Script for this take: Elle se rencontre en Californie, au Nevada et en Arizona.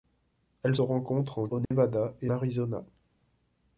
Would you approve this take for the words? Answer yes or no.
no